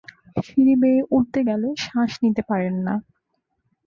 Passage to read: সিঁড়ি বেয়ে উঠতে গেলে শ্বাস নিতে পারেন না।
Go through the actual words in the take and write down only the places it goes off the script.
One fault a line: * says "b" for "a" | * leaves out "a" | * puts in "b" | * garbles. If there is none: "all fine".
all fine